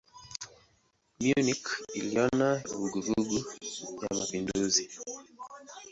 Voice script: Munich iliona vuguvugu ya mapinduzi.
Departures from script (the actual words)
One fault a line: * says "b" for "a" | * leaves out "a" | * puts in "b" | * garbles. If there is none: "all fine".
all fine